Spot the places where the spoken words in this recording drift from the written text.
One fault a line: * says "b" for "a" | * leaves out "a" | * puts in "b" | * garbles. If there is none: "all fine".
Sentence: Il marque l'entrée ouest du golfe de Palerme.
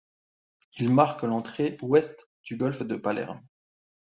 all fine